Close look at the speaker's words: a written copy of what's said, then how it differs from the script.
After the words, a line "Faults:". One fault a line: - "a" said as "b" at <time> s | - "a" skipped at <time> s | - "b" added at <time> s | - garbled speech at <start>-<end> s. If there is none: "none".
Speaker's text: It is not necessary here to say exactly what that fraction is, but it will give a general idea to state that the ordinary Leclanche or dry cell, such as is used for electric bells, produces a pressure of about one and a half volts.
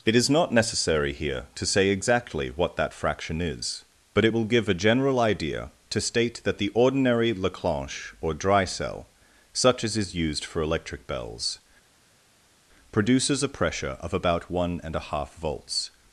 It is not necessary here to say exactly what that fraction is, but it will give a general idea to state that the ordinary Leclanche or dry cell, such as is used for electric bells, produces a pressure of about one and a half volts.
Faults:
none